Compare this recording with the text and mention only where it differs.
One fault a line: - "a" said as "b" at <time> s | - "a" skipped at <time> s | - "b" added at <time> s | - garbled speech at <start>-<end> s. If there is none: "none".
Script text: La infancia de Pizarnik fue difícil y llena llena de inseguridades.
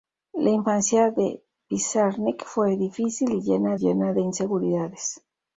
none